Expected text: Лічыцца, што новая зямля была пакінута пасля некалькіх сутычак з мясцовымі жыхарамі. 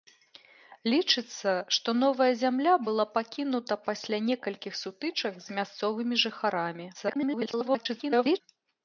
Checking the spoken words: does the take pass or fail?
fail